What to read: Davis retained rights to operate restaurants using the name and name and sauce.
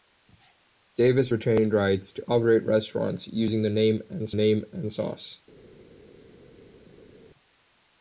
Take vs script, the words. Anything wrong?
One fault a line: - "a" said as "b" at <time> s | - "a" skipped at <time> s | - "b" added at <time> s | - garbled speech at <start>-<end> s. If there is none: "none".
none